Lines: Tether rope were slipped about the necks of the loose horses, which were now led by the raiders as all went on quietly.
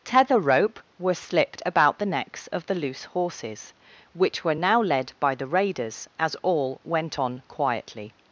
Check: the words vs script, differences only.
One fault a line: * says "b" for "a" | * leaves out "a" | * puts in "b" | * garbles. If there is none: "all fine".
all fine